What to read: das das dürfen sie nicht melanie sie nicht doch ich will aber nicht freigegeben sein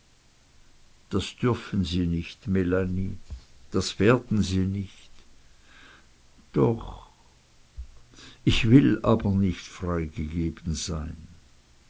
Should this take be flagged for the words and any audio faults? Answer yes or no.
yes